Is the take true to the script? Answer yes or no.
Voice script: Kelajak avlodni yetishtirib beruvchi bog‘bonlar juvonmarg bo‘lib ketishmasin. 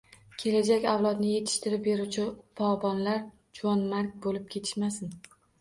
yes